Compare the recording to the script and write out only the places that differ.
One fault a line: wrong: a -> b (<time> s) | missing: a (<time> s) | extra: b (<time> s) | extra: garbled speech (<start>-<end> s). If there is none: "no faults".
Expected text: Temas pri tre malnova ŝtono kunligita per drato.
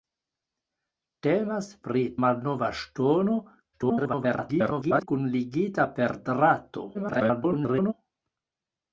missing: tre (2.0 s)
extra: garbled speech (3.7-5.1 s)
extra: garbled speech (6.9-7.9 s)